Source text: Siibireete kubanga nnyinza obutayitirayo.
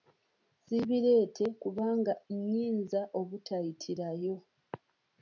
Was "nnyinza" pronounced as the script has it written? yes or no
yes